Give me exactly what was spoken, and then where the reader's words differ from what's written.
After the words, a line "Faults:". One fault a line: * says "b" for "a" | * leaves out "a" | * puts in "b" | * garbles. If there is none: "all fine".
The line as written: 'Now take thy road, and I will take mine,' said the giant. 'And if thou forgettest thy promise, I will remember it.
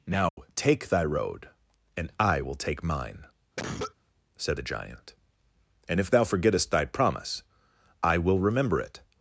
'Now take thy road, and I will take mine,' said the giant. 'And if thou forgettest thy promise, I will remember it.
Faults:
all fine